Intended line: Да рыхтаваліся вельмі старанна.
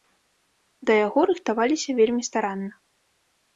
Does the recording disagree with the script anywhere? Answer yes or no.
yes